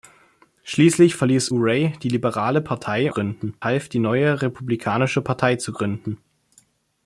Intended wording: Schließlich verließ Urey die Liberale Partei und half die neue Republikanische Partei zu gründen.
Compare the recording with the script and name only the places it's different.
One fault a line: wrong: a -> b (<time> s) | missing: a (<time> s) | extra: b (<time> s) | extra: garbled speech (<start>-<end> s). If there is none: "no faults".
wrong: und -> gründen (3.1 s)